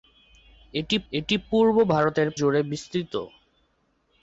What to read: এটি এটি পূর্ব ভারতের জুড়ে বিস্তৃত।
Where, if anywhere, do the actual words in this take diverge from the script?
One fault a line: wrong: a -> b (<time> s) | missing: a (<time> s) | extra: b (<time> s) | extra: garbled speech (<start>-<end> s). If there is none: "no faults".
no faults